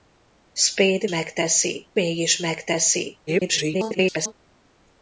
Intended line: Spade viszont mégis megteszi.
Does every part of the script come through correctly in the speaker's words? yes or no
no